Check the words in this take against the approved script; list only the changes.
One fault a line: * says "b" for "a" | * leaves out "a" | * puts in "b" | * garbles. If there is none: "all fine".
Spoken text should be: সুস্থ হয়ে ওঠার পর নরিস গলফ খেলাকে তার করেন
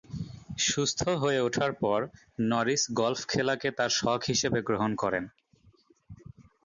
* puts in "শখ হিসেবে গ্রহণ"